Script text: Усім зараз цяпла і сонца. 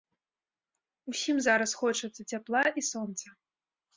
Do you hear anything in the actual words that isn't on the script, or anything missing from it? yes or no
yes